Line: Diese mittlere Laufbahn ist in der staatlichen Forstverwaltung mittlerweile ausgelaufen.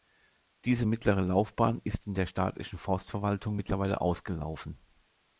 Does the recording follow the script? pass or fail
pass